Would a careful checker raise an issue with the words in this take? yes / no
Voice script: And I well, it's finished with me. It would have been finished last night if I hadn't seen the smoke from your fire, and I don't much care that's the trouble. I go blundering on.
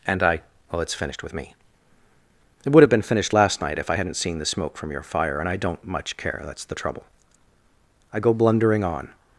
no